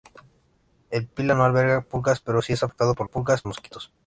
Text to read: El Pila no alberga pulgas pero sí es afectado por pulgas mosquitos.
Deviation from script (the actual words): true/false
false